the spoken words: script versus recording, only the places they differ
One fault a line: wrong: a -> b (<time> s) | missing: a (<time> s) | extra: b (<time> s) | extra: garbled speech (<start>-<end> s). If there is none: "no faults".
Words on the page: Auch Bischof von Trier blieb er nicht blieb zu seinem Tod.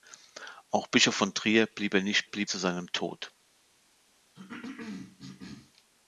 no faults